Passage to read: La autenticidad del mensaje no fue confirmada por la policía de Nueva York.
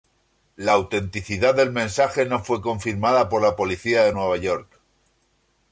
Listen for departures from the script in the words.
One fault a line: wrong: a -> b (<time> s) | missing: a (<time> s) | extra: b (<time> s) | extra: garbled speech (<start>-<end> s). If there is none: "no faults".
no faults